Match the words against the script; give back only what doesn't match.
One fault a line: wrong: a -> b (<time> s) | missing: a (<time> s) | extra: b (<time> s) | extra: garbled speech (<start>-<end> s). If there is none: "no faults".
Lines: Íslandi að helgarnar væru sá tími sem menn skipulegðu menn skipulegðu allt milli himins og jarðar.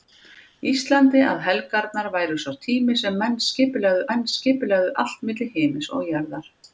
no faults